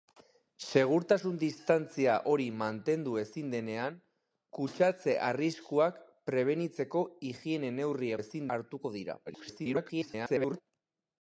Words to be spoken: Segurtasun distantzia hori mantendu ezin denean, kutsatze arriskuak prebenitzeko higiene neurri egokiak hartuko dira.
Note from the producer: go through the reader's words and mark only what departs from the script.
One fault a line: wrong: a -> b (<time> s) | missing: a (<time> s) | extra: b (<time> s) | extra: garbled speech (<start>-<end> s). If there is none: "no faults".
wrong: egokiak -> ezin (8.2 s)
extra: garbled speech (9.3-10.6 s)